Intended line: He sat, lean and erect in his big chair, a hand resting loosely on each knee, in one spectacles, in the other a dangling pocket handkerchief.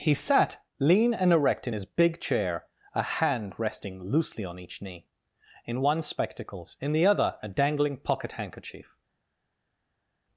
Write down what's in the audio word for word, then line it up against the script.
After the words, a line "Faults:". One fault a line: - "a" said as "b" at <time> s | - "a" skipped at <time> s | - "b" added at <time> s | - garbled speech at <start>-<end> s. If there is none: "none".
He sat, lean and erect in his big chair, a hand resting loosely on each knee, in one spectacles, in the other a dangling pocket handkerchief.
Faults:
none